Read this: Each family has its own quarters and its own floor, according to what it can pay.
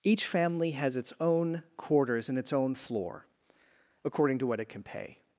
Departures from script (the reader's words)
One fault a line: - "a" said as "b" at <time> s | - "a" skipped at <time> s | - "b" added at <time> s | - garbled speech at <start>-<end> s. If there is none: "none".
none